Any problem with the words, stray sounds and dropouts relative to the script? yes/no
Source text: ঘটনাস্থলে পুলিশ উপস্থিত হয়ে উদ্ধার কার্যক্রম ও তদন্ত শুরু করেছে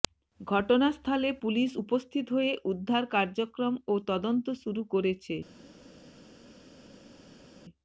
no